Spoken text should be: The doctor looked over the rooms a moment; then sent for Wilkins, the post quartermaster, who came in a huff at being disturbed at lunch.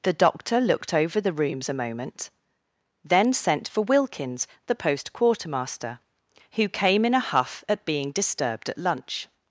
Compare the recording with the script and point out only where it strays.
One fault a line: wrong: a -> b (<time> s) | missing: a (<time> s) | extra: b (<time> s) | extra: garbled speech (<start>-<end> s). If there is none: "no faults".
no faults